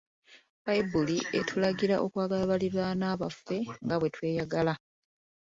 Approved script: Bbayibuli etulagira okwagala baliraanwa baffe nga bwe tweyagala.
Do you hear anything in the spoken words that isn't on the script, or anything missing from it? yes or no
no